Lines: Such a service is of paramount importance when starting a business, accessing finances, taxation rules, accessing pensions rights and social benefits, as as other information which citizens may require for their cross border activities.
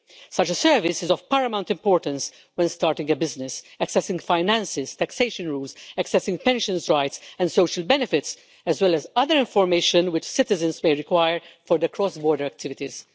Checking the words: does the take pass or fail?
fail